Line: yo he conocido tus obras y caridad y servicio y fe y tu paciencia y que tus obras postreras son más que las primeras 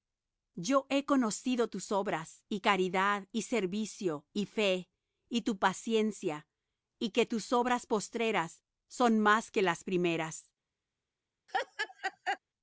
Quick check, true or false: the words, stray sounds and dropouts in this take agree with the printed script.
false